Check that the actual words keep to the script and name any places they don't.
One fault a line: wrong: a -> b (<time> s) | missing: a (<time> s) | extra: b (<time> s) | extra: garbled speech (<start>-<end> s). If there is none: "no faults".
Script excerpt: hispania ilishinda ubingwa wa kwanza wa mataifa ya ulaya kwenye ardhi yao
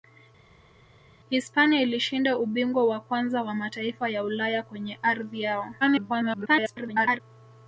extra: garbled speech (5.8-7.2 s)